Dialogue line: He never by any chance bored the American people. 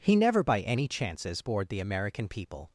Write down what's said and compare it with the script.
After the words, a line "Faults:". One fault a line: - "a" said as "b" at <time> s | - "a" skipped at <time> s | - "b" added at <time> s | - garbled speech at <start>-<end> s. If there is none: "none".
He never by any chances bored the American people.
Faults:
- "chance" said as "chances" at 0.9 s